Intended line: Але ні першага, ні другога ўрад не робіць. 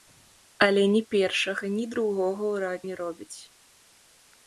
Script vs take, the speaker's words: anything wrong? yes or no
no